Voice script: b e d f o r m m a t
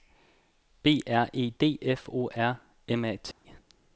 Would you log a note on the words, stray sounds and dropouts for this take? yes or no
yes